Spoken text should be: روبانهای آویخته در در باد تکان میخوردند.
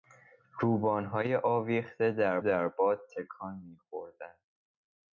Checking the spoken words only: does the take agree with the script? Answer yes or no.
yes